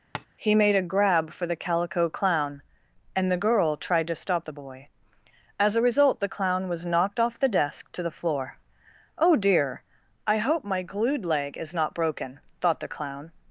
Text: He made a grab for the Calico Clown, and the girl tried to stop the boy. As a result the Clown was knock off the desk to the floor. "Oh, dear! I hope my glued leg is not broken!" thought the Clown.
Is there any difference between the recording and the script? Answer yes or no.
yes